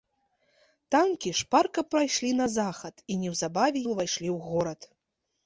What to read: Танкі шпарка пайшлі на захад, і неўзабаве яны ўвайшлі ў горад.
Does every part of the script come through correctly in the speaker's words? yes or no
no